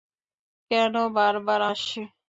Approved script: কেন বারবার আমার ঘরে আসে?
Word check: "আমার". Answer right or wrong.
wrong